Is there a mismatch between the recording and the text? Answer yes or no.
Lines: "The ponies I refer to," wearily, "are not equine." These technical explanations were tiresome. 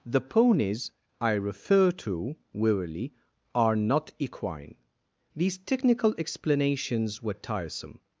no